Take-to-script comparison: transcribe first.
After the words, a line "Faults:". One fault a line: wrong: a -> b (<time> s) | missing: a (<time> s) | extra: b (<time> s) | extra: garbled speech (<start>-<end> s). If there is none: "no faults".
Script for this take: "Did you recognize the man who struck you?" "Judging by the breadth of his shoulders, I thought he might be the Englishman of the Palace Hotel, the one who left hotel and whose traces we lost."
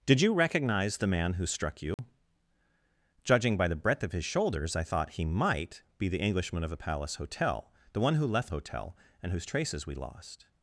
"Did you recognize the man who struck you?" "Judging by the breadth of his shoulders, I thought he might be the Englishman of the Palace Hotel, the one who left hotel and whose traces we lost."
Faults:
no faults